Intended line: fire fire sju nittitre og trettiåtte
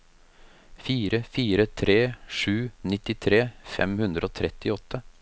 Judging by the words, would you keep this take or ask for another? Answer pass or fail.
fail